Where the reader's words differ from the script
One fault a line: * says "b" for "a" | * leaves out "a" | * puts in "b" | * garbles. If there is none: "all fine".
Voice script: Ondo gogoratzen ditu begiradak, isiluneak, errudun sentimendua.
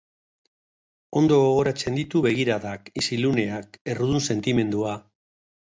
all fine